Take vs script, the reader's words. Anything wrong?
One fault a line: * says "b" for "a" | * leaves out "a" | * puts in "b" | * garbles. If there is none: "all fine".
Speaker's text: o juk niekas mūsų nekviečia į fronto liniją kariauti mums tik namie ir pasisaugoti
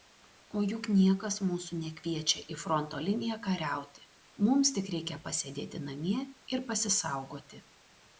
* puts in "reikia pasėdėti"